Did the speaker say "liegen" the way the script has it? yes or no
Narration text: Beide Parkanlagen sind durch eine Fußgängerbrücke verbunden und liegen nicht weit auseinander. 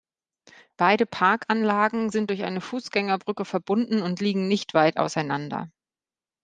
yes